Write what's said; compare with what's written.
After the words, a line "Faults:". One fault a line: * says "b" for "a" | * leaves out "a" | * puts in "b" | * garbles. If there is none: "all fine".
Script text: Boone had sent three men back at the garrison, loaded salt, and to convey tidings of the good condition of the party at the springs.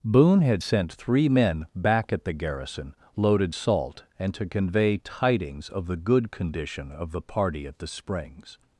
Boone had sent three men back at the garrison, loaded salt, and to convey tidings of the good condition of the party at the springs.
Faults:
all fine